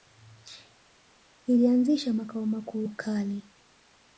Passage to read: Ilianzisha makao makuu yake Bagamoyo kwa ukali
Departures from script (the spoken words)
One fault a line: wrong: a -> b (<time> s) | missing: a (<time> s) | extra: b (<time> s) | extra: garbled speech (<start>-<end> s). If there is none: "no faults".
missing: yake Bagamoyo kwa (2.8 s)